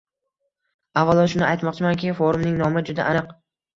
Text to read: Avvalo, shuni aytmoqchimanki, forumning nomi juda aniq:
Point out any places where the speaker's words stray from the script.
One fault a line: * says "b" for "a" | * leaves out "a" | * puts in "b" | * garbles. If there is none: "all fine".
all fine